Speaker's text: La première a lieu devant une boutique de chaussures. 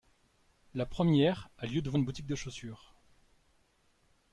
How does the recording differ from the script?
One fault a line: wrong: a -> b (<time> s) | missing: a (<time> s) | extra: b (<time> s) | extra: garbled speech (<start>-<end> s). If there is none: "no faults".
no faults